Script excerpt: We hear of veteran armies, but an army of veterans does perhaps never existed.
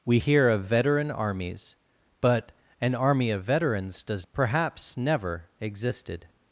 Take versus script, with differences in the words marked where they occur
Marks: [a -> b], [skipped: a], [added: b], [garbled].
We hear of veteran armies, but an army of veterans does perhaps never existed.